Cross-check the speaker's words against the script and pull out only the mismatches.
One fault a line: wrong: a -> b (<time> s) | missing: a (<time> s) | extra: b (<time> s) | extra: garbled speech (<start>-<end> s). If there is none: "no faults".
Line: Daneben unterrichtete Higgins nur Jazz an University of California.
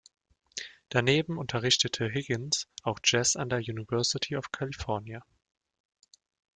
wrong: nur -> auch (2.8 s)
extra: der (3.5 s)